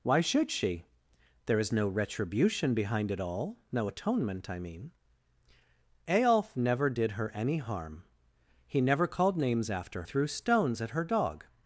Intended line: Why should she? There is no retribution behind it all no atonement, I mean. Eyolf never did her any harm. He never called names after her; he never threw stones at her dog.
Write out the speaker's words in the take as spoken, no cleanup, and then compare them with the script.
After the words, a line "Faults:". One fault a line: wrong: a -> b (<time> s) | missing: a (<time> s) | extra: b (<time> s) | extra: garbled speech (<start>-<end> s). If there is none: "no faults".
Why should she? There is no retribution behind it all no atonement, I mean. Eyolf never did her any harm. He never called names after threw stones at her dog.
Faults:
missing: her he never (10.0 s)